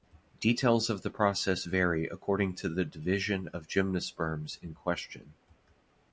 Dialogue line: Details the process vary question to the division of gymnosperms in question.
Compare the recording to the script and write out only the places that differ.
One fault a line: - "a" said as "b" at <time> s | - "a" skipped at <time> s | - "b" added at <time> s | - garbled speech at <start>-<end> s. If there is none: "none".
- "of" added at 0.9 s
- "question" said as "according" at 2.1 s